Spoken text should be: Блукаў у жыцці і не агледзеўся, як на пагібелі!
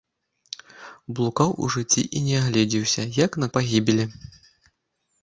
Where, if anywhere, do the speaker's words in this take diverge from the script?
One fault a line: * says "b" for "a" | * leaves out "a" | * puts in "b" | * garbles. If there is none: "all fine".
all fine